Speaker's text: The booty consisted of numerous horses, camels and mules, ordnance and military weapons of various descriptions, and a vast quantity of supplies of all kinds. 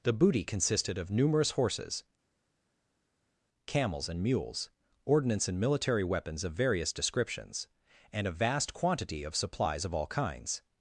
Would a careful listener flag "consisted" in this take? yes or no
no